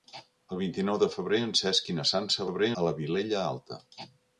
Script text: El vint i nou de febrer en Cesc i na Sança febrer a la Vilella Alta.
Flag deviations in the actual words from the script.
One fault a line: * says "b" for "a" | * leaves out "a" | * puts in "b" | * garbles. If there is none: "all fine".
all fine